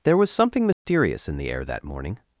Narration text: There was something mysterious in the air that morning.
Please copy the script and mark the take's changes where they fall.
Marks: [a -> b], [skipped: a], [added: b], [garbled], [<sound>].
There was something mysterious [dropout] in the air that morning.